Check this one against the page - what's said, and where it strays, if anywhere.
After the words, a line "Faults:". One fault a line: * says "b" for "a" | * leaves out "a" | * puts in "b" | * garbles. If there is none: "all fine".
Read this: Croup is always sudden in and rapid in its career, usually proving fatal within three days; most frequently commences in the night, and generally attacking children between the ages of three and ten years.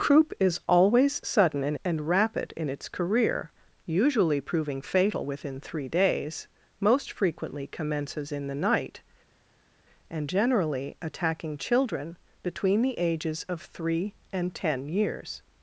Croup is always sudden in and rapid in its career, usually proving fatal within three days; most frequently commences in the night, and generally attacking children between the ages of three and ten years.
Faults:
all fine